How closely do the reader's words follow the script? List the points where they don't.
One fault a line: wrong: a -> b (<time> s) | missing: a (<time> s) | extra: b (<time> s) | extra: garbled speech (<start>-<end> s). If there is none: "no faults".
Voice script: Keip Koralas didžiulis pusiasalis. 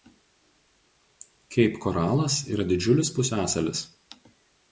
extra: yra (2.5 s)